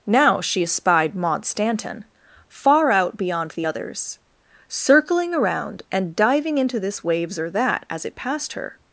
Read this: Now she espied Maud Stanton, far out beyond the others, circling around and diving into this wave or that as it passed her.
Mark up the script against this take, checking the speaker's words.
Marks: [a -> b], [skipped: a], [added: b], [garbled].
Now she espied Maud Stanton, far out beyond the others, circling around and diving into this [wave -> waves] or that as it passed her.